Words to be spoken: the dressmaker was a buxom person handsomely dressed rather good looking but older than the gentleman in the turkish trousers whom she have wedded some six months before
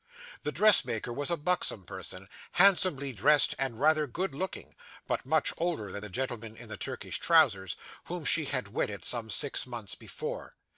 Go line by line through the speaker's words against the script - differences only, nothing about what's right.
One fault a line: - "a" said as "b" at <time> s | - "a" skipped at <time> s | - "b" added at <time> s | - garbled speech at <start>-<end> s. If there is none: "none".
- "and" added at 3.6 s
- "much" added at 5.3 s
- "have" said as "had" at 8.4 s